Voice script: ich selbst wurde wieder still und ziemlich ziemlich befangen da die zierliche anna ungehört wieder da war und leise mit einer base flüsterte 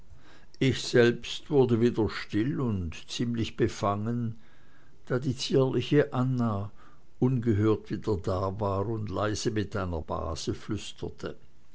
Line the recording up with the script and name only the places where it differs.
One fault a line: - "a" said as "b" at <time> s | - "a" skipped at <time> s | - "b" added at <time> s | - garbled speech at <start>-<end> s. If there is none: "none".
- "ziemlich" skipped at 3.5 s